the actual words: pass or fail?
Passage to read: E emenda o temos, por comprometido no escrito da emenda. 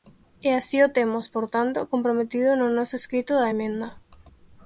fail